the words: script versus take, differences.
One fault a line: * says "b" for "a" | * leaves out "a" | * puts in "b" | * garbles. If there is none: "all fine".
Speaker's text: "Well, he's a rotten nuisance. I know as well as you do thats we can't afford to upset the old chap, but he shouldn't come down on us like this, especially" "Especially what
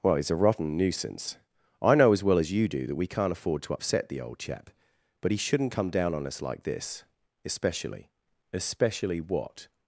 * says "that" for "thats"